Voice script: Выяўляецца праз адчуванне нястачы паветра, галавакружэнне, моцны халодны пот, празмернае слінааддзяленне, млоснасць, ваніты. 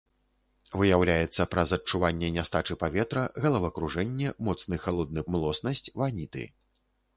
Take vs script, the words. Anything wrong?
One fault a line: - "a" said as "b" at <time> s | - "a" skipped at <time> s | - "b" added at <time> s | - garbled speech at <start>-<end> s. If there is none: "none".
- "пот празмернае слінааддзяленне" skipped at 5.2 s